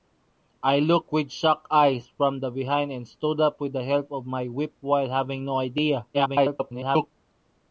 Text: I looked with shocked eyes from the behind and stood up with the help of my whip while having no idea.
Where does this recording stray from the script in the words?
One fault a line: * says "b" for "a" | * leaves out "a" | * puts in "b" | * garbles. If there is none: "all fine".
* garbles